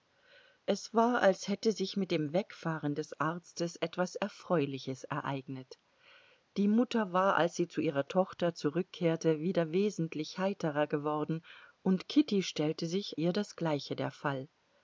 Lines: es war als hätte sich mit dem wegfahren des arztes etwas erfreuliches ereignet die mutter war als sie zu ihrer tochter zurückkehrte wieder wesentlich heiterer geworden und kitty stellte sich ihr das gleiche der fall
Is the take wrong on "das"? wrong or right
right